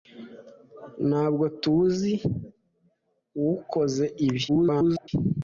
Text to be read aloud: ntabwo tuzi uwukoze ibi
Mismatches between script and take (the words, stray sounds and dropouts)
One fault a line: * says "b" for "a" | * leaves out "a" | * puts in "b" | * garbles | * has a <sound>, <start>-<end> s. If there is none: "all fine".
* garbles